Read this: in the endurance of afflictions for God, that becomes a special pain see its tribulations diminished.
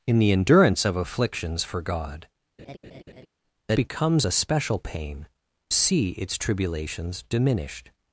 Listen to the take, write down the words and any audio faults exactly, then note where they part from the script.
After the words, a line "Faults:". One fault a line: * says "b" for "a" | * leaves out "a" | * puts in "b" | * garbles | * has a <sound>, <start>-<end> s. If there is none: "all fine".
in the endurance of afflictions for God, that becomes a special pain see its tribulations diminished.
Faults:
* has a laugh, 2.6-3.3 s